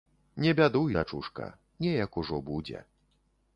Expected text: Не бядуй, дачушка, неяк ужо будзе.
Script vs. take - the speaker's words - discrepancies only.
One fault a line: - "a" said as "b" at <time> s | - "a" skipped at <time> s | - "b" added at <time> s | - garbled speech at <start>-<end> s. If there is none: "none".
none